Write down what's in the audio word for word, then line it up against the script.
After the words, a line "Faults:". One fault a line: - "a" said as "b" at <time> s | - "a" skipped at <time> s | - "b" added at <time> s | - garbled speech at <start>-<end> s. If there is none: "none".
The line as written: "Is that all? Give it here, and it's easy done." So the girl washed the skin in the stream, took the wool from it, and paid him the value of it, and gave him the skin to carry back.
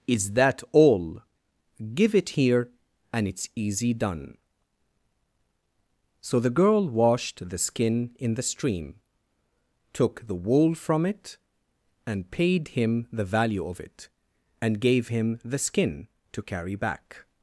"Is that all? Give it here, and it's easy done." So the girl washed the skin in the stream, took the wool from it, and paid him the value of it, and gave him the skin to carry back.
Faults:
none